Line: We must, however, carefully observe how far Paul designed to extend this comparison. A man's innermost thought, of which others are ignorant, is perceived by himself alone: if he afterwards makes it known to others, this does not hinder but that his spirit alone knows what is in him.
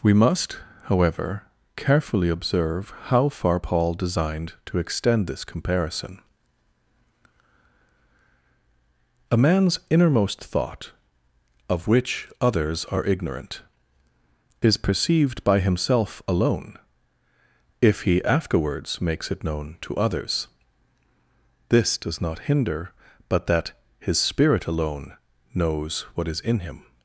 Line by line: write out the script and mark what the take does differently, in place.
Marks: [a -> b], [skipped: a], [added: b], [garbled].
We must, however, carefully observe how far Paul designed to extend this comparison. A man's innermost thought, of which others are ignorant, is perceived by himself alone: if he afterwards makes it known to others, this does not hinder but that his spirit alone knows what is in him.